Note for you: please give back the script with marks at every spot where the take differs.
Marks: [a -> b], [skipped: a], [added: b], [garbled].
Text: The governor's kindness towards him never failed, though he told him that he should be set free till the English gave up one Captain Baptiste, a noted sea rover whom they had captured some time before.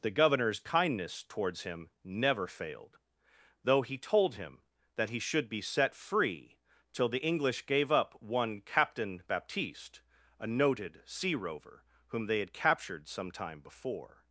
The governor's kindness towards him never failed, though he told him that he should be set free till the English gave up one Captain Baptiste, a noted sea rover whom they had captured some time before.